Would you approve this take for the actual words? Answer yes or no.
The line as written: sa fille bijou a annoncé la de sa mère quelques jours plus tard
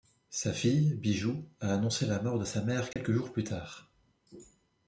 no